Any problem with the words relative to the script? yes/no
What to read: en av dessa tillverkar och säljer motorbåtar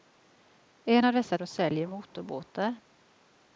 yes